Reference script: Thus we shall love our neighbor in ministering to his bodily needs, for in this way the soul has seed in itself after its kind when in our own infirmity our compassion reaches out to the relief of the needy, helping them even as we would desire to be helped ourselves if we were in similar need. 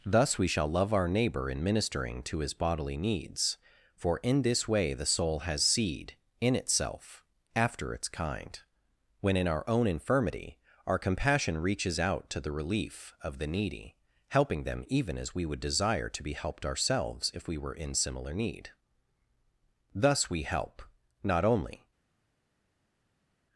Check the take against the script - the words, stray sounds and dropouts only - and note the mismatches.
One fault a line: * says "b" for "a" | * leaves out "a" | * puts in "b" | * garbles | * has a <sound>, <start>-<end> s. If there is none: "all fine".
* puts in "Thus we help not only"